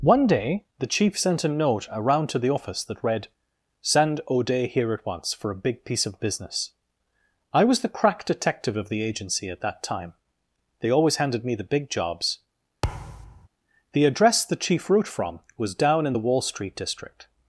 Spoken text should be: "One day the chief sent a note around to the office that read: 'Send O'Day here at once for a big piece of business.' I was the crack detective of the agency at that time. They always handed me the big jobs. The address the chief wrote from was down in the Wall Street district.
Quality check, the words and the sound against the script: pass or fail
fail